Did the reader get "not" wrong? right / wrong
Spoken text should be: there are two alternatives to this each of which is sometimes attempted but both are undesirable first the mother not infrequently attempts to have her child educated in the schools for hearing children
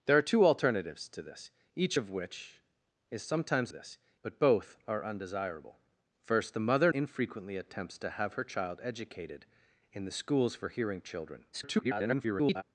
wrong